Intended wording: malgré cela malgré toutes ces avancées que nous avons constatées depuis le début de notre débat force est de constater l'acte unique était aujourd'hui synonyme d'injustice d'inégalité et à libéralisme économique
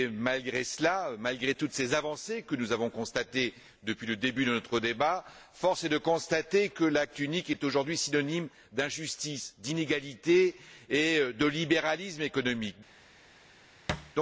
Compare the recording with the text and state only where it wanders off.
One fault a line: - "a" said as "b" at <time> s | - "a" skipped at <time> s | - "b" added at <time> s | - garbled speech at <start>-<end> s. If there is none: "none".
- "que" added at 6.7 s
- "était" said as "est" at 7.5 s
- "à" said as "de" at 11.3 s